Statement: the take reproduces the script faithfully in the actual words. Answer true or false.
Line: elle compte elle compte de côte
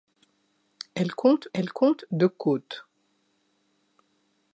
true